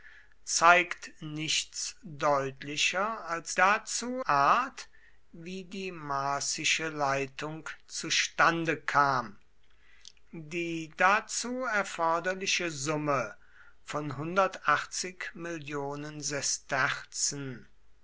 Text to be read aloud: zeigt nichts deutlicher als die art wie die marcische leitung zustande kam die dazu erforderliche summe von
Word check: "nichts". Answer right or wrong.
right